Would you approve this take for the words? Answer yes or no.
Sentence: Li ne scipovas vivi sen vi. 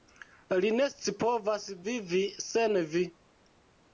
yes